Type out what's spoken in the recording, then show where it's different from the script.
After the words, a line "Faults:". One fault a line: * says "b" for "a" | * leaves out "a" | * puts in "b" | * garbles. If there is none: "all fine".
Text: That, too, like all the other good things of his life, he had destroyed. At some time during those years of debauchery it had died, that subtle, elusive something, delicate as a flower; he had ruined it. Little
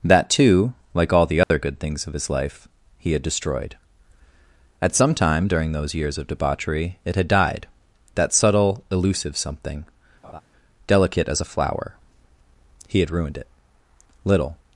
That, too, like all the other good things of his life, he had destroyed. At some time during those years of debauchery it had died, that subtle, elusive something, delicate as a flower; he had ruined it. Little
Faults:
all fine